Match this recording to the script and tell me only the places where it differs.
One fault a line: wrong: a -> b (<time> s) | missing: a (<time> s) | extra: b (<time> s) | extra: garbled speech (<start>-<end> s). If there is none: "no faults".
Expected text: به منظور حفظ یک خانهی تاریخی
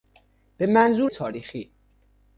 missing: حفظ یک خانهی (1.1 s)